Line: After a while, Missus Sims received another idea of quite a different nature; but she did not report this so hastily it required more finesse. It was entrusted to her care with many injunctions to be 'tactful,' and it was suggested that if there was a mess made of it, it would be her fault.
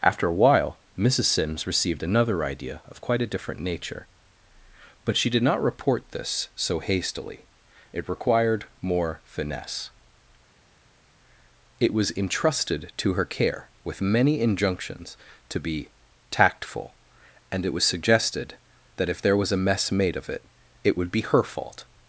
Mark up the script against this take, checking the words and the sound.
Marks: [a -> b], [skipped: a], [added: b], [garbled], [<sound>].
After a while, Missus Sims received another idea of quite a different nature; but she did not report this so hastily it required more finesse. It was entrusted to her care with many injunctions to be 'tactful,' and it was suggested that if there was a mess made of it, it would be her fault.